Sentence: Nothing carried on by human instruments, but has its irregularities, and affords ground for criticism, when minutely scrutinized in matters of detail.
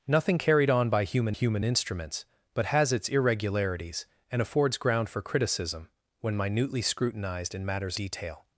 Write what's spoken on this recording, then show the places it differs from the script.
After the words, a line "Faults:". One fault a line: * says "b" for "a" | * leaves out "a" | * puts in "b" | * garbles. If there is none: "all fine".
Nothing carried on by human human instruments, but has its irregularities, and affords ground for criticism, when minutely scrutinized in matters detail.
Faults:
* puts in "human"
* leaves out "of"